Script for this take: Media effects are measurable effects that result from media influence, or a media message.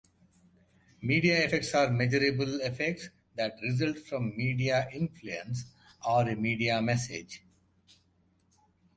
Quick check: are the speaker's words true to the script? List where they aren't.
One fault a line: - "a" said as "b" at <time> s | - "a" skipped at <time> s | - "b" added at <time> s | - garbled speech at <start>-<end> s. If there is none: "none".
none